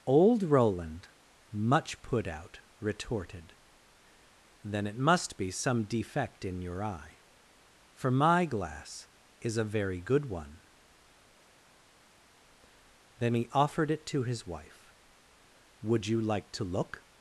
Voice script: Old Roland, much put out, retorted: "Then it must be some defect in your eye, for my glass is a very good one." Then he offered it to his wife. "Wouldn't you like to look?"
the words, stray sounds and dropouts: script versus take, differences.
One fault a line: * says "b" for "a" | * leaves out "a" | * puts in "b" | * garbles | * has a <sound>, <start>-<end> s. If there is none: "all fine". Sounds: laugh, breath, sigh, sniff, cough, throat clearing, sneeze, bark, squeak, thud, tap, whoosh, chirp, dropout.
* says "Would" for "Wouldn't"